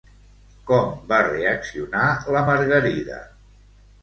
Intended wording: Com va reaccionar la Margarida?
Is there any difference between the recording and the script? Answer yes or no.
no